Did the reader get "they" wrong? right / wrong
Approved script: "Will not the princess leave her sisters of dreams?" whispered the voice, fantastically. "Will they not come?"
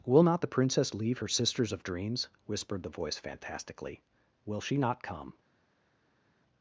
wrong